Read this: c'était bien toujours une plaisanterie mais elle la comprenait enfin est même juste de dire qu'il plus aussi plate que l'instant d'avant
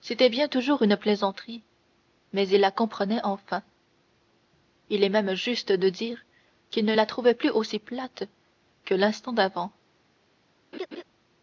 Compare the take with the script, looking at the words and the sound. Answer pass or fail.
fail